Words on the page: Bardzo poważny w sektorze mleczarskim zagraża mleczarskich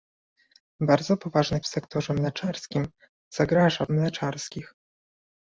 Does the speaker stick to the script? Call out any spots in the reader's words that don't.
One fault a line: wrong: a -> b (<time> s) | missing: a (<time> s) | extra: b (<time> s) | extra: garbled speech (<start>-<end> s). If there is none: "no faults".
no faults